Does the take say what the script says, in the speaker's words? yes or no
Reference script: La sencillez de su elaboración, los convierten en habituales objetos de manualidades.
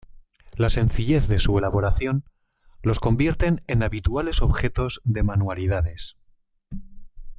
yes